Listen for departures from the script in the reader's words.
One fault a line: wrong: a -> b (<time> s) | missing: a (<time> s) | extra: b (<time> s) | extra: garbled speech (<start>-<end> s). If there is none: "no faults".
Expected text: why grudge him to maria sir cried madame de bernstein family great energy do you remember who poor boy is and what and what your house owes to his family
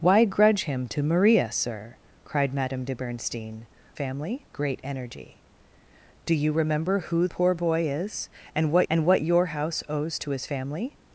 no faults